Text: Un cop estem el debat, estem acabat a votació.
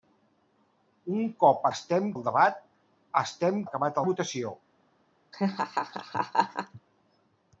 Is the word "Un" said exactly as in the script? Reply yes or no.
yes